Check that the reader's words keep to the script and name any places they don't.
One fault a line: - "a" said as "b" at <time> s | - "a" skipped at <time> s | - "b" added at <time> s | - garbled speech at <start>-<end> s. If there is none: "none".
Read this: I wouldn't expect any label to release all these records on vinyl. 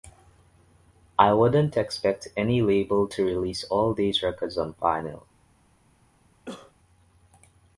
none